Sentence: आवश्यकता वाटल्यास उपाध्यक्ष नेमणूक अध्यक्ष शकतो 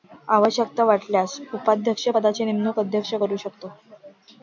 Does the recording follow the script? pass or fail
fail